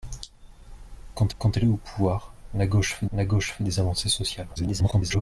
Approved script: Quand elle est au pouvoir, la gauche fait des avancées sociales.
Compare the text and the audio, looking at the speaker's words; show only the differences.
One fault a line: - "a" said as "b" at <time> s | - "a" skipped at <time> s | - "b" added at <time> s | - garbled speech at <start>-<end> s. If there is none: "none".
- "quand" added at 1.4 s
- "la gauche fait" added at 3.1 s
- garbled speech at 4.6-5.2 s